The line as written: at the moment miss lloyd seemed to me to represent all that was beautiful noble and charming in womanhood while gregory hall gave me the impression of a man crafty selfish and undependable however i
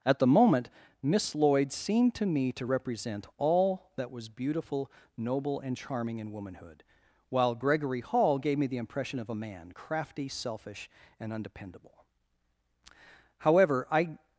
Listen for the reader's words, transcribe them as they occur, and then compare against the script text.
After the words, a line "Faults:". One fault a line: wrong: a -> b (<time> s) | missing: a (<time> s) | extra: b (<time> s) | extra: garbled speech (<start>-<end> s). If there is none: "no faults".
at the moment miss lloyd seemed to me to represent all that was beautiful noble and charming in womanhood while gregory hall gave me the impression of a man crafty selfish and undependable however i
Faults:
no faults